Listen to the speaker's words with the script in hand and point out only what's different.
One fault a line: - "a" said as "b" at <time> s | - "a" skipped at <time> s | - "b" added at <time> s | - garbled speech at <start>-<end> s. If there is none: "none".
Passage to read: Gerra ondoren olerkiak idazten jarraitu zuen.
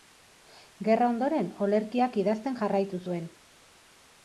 none